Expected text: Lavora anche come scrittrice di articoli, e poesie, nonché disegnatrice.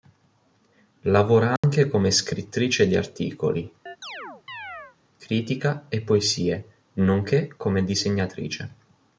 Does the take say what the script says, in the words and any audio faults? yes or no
no